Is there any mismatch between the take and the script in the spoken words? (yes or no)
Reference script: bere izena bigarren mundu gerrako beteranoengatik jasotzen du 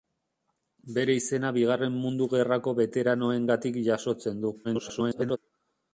yes